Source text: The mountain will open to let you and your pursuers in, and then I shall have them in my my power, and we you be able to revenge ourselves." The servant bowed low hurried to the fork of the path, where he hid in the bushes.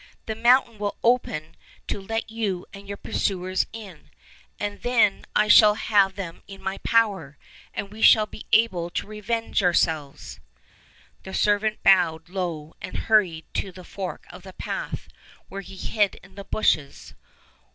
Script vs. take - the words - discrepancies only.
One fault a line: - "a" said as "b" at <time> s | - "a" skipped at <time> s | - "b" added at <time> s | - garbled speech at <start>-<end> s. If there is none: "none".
- "my" skipped at 6.8 s
- "you" said as "shall" at 8.0 s
- "and" added at 12.8 s